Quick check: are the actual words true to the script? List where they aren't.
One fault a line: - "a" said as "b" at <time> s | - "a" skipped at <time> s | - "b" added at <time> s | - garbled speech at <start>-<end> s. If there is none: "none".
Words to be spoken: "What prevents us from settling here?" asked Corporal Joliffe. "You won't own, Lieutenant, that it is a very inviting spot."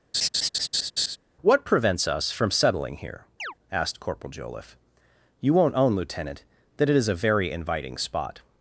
none